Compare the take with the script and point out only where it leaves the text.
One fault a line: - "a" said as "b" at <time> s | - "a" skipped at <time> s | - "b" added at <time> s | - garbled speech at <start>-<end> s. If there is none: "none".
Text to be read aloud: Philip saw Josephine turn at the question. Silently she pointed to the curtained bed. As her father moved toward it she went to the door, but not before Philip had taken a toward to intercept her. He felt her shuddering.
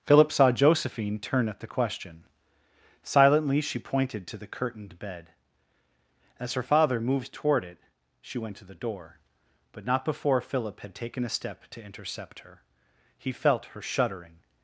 - "toward" said as "step" at 11.3 s